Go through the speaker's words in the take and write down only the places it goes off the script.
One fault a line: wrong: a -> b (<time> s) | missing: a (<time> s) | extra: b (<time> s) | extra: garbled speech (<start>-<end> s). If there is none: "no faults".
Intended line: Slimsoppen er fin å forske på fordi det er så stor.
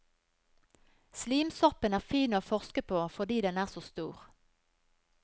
wrong: det -> den (3.5 s)